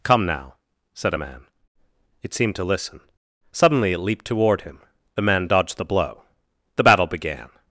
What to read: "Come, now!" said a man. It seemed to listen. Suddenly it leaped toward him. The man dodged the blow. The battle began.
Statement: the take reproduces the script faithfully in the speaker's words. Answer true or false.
true